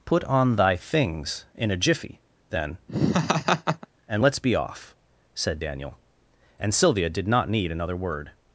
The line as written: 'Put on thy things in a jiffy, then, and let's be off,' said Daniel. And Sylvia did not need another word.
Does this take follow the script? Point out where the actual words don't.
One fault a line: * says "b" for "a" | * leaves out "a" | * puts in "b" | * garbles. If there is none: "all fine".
all fine